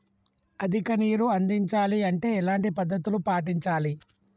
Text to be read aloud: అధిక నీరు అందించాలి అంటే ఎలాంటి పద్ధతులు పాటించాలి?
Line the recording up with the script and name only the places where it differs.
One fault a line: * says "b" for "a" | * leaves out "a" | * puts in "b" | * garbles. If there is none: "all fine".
all fine